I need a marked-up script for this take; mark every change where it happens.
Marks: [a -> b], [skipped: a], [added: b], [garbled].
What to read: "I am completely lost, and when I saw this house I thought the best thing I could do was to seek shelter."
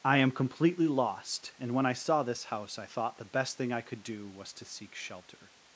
"I am completely lost, and when I saw this house I thought the best thing I could do was to seek shelter."